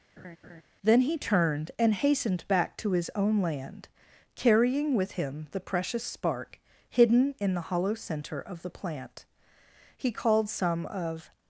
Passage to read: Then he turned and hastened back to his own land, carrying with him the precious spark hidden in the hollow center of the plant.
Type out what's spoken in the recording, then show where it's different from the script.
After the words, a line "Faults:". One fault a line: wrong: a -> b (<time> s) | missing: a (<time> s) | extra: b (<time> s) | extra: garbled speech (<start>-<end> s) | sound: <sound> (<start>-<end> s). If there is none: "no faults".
Then he turned and hastened back to his own land, carrying with him the precious spark hidden in the hollow center of the plant. He called some of
Faults:
sound: laugh (0.2-0.6 s)
extra: He called some of (10.0 s)